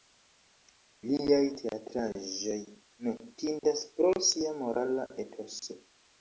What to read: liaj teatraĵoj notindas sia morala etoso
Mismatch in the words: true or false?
true